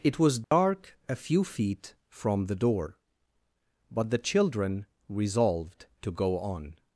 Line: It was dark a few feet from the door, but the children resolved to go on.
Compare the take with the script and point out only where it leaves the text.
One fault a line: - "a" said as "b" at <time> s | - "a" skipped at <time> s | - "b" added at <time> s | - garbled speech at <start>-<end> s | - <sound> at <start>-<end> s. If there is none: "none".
- dropout at 0.4-0.5 s